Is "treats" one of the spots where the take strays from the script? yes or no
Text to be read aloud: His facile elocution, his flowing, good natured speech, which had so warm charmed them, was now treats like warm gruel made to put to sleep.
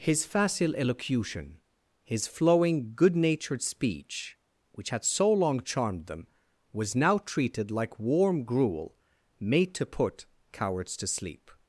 yes